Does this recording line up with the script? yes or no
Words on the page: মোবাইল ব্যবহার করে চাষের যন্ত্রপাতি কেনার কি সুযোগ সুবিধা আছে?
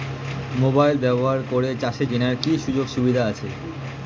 no